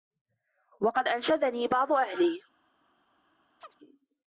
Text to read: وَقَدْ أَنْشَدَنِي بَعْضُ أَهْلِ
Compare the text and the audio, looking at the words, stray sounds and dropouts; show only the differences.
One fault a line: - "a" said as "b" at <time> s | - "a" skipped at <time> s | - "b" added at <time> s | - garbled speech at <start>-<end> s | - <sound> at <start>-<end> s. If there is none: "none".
- chirp at 3.6-3.8 s